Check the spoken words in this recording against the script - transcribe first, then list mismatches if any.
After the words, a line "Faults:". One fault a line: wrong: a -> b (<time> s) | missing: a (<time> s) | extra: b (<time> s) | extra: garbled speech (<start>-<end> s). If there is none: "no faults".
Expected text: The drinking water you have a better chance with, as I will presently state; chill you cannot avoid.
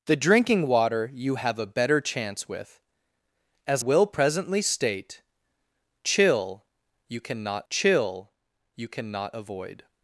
The drinking water you have a better chance with, as will presently state; chill you cannot chill you cannot avoid.
Faults:
missing: I (3.8 s)
extra: chill you cannot (7.7 s)